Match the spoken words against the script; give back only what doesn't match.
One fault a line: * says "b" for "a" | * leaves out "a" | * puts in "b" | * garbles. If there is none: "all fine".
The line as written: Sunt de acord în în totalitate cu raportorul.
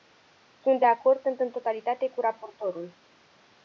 all fine